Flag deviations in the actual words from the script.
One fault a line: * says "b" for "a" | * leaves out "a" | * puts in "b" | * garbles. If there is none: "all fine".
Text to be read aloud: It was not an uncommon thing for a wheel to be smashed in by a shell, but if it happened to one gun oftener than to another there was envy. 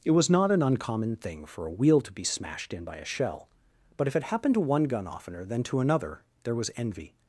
all fine